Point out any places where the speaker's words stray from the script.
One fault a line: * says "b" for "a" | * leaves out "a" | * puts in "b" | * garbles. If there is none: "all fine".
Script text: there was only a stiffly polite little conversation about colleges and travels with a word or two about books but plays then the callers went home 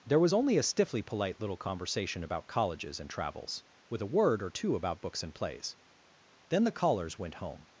* says "and" for "but"